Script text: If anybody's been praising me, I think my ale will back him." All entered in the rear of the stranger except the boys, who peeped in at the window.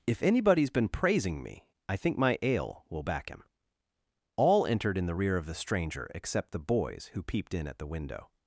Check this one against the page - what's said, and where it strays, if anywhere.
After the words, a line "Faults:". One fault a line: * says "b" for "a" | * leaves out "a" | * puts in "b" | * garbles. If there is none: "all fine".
If anybody's been praising me, I think my ale will back him." All entered in the rear of the stranger except the boys, who peeped in at the window.
Faults:
all fine